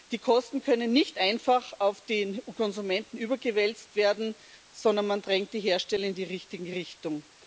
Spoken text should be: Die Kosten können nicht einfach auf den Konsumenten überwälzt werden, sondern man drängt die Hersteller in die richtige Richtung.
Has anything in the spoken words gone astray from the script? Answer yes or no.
no